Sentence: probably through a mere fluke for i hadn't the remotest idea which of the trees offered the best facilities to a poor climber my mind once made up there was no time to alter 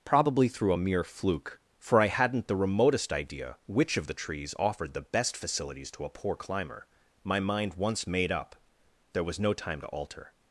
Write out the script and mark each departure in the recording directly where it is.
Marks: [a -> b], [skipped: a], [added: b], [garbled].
probably through a mere fluke for i hadn't the remotest idea which of the trees offered the best facilities to a poor climber my mind once made up there was no time to alter